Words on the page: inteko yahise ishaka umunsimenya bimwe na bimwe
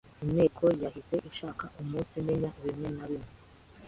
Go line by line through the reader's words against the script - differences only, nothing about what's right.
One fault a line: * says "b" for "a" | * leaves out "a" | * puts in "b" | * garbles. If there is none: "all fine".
all fine